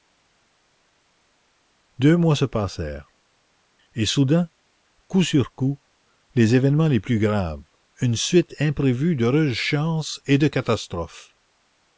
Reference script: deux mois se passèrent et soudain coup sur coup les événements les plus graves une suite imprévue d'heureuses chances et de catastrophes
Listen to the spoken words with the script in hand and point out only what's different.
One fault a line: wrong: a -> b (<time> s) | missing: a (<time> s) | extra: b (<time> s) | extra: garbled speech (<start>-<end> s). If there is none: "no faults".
no faults